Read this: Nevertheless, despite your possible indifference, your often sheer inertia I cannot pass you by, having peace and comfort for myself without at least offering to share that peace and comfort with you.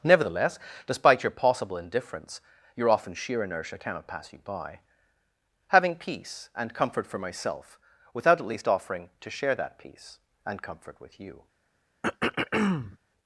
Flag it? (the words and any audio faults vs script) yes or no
yes